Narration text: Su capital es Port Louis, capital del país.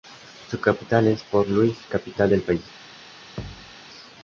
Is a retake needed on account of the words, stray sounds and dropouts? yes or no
yes